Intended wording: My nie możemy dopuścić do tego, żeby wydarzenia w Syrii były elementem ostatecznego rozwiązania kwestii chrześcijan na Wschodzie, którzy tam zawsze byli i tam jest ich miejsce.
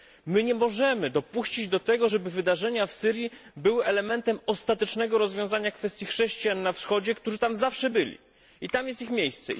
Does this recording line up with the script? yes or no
yes